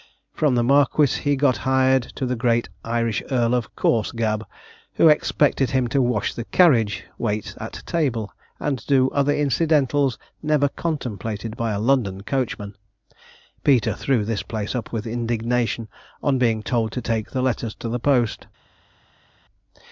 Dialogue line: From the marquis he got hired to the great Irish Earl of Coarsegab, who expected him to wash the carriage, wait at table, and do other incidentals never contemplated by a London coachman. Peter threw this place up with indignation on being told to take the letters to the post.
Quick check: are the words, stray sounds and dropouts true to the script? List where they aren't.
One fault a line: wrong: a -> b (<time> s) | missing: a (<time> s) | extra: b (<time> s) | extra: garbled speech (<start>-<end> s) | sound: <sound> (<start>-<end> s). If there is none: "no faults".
no faults